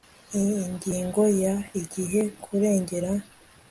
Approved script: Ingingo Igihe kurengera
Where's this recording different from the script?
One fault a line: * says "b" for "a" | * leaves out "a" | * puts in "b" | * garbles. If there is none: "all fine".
* puts in "ya"